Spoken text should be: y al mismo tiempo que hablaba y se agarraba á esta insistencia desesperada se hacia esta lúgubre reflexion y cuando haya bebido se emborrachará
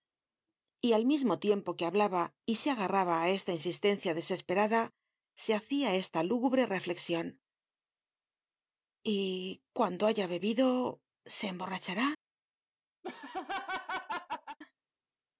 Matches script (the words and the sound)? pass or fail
fail